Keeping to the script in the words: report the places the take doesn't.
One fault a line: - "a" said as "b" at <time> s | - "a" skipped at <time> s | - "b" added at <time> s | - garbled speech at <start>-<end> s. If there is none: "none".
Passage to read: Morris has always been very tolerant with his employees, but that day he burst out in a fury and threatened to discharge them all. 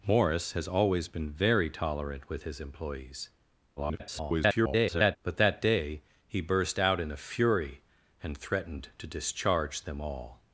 - garbled speech at 3.8-5.2 s